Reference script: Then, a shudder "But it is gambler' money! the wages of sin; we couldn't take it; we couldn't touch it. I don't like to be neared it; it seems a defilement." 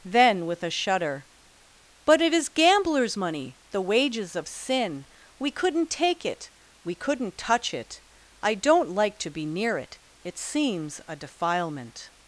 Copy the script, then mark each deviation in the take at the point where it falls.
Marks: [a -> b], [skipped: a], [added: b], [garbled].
Then, [added: with] a shudder "But it is [gambler' -> gamblers] money! the wages of sin; we couldn't take it; we couldn't touch it. I don't like to be [neared -> near] it; it seems a defilement."